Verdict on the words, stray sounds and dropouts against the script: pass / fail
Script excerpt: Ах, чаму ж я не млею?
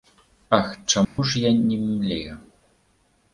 fail